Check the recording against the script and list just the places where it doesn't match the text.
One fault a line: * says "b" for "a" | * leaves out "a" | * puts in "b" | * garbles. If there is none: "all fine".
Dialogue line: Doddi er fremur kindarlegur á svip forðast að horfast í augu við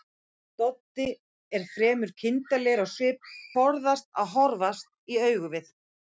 all fine